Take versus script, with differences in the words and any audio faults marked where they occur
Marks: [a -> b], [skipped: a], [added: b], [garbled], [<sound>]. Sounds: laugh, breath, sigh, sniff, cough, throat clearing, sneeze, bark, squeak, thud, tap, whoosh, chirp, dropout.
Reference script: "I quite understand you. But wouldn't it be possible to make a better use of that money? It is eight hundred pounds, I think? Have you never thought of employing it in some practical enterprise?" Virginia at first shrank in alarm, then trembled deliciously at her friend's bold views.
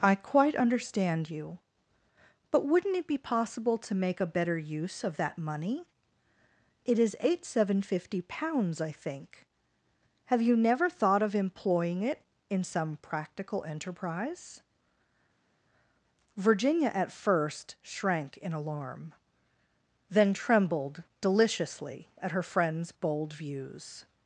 "I quite understand you. But wouldn't it be possible to make a better use of that money? It is eight [hundred -> seven fifty] pounds, I think? Have you never thought of employing it in some practical enterprise?" Virginia at first shrank in alarm, then trembled deliciously at her friend's bold views.